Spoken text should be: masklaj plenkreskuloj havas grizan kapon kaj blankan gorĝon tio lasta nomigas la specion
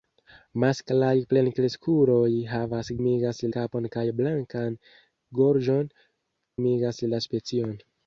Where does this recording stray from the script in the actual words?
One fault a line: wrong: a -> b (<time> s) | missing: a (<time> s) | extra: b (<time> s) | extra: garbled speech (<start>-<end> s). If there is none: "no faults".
wrong: grizan -> nomigas (3.0 s)
missing: tio lasta (5.9 s)